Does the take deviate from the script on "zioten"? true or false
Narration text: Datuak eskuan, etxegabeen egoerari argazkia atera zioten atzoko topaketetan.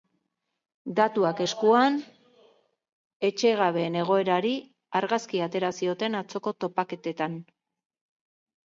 false